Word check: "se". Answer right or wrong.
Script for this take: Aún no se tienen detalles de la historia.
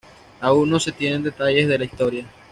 right